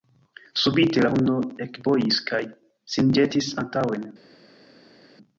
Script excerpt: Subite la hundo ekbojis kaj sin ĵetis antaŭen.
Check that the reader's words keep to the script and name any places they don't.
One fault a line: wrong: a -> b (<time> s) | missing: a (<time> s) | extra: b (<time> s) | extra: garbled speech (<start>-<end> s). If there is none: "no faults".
no faults